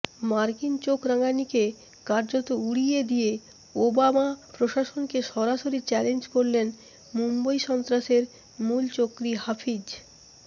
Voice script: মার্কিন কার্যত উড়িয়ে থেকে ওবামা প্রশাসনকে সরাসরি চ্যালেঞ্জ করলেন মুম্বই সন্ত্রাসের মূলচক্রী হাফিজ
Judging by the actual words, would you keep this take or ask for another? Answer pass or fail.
fail